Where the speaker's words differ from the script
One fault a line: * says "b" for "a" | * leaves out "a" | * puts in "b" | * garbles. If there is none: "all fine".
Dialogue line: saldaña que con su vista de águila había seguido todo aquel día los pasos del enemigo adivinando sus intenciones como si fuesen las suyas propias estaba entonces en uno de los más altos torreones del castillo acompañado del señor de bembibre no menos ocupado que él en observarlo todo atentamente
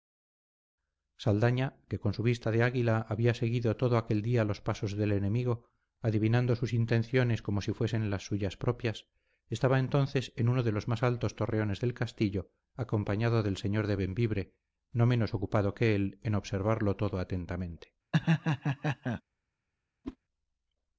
all fine